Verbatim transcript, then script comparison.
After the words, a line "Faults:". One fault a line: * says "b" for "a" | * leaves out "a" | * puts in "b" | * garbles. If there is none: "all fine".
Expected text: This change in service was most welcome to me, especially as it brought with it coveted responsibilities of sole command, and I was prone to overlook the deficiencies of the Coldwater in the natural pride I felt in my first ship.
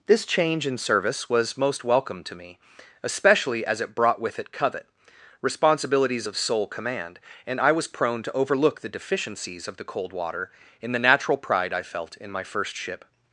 This change in service was most welcome to me, especially as it brought with it covet responsibilities of sole command, and I was prone to overlook the deficiencies of the Coldwater in the natural pride I felt in my first ship.
Faults:
* says "covet" for "coveted"